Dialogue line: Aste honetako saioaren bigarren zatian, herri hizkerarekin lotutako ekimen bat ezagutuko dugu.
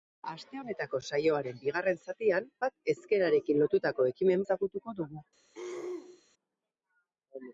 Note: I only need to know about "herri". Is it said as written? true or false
false